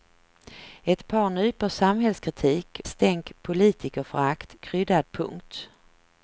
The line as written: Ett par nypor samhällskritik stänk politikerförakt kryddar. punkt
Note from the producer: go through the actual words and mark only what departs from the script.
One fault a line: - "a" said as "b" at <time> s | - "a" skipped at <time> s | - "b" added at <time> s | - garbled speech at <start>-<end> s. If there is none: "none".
none